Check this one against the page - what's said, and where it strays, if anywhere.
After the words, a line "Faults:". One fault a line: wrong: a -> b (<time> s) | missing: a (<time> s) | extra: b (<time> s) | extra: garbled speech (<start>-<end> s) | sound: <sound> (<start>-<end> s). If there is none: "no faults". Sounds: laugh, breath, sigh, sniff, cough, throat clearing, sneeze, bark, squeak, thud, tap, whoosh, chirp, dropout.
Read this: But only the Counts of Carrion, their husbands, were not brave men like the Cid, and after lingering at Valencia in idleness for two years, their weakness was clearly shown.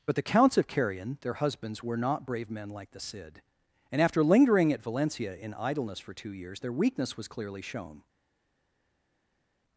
But the Counts of Carrion, their husbands, were not brave men like the Cid, and after lingering at Valencia in idleness for two years, their weakness was clearly shown.
Faults:
missing: only (0.1 s)